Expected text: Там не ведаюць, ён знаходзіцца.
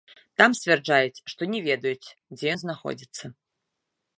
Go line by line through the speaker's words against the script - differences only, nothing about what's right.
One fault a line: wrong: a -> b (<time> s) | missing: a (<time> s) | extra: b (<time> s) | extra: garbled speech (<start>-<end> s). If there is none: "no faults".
extra: сцвярджаюць што (0.6 s)
extra: дзе (2.4 s)